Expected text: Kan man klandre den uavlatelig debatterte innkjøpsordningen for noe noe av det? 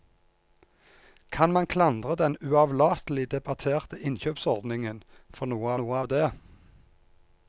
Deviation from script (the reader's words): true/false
false